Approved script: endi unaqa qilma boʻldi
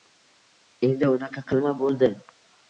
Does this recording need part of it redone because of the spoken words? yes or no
no